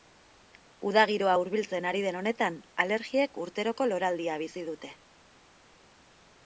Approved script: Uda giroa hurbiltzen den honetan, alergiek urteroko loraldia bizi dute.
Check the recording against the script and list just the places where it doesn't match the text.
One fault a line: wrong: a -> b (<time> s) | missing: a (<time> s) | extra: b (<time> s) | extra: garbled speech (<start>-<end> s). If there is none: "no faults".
extra: ari (1.9 s)